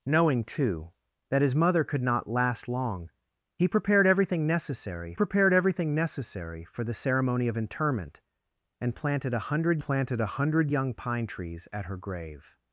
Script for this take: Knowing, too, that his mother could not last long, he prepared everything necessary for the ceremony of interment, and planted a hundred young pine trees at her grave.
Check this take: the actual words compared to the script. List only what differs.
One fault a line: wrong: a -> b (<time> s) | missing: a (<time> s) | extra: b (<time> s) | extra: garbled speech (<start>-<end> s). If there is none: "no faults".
extra: prepared everything necessary (5.1 s)
extra: planted a hundred (9.8 s)